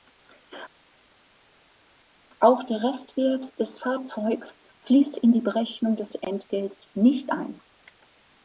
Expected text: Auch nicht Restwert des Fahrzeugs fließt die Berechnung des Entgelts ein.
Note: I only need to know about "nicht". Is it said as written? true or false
false